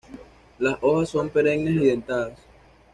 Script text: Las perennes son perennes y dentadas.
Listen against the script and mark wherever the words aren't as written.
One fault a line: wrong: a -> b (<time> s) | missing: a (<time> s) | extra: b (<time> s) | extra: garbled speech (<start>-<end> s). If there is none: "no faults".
wrong: perennes -> hojas (0.8 s)